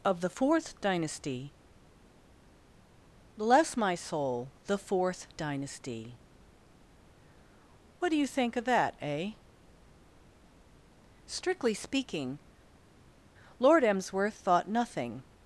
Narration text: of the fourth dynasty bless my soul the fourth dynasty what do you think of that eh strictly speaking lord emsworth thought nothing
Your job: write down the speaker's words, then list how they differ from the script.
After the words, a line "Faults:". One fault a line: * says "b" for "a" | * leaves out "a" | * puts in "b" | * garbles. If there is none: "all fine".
of the fourth dynasty bless my soul the fourth dynasty what do you think of that eh strictly speaking lord emsworth thought nothing
Faults:
all fine